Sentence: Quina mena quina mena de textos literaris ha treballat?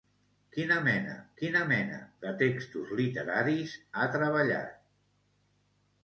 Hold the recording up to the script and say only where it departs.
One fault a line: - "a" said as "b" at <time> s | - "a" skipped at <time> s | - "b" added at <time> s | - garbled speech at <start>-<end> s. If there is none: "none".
none